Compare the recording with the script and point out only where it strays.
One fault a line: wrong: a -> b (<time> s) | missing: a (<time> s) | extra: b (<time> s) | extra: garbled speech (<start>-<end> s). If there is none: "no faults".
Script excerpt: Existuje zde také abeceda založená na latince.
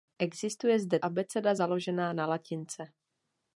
missing: také (1.0 s)